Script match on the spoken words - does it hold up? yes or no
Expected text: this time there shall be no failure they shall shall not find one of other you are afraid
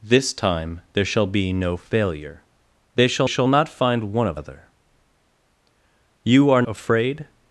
yes